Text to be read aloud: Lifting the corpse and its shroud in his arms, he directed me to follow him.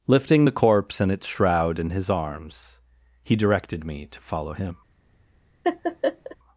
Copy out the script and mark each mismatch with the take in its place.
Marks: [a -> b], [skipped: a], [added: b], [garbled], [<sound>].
Lifting the corpse and its shroud in his arms, he directed me to follow him. [laugh]